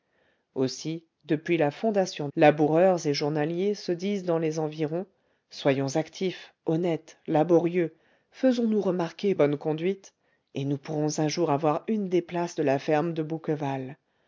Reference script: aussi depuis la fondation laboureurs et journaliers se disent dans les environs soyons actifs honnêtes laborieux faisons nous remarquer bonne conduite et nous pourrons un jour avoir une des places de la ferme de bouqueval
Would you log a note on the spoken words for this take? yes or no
no